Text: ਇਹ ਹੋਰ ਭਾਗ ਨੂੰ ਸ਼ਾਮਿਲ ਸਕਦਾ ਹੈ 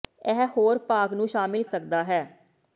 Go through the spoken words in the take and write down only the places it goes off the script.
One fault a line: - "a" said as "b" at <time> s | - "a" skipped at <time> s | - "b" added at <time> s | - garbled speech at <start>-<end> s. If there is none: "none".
none